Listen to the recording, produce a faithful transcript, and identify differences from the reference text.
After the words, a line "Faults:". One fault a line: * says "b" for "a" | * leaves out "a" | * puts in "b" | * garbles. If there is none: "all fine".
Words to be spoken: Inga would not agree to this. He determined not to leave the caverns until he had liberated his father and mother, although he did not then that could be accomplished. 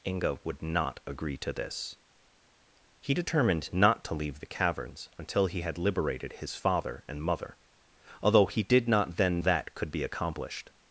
Inga would not agree to this. He determined not to leave the caverns until he had liberated his father and mother, although he did not then that could be accomplished.
Faults:
all fine